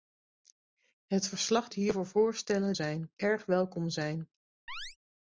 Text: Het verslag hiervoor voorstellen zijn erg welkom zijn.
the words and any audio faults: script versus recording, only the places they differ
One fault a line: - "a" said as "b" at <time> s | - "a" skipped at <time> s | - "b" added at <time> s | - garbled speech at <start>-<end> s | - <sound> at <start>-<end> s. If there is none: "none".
- chirp at 4.7-5.0 s